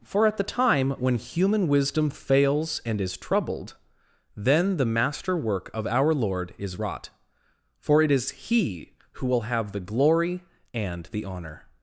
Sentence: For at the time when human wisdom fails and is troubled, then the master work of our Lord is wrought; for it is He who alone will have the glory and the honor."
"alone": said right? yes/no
no